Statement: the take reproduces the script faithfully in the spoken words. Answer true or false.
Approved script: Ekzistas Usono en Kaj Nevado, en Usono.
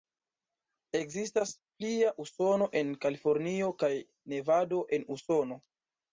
false